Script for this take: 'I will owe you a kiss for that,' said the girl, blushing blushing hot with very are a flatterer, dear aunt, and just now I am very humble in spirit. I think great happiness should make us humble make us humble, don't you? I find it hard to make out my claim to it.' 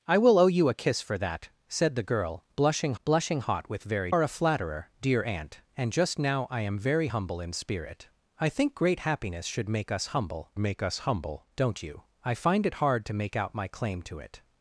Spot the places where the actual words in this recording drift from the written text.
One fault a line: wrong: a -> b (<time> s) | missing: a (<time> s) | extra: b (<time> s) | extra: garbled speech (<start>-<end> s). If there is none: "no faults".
no faults